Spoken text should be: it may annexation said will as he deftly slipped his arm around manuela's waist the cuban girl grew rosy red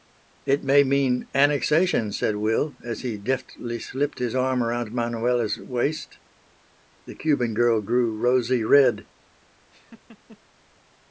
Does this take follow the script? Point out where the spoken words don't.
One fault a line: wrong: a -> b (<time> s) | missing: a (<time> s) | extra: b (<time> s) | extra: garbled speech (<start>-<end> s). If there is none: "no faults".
extra: mean (0.8 s)